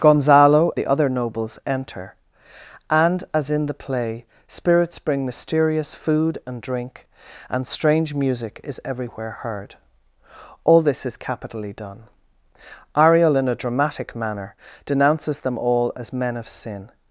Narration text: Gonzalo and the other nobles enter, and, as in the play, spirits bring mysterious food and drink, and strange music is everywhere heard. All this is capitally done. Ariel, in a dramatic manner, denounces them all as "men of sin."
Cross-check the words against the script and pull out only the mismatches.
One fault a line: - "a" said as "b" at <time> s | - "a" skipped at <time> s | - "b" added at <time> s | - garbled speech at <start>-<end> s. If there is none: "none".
- "and" skipped at 0.7 s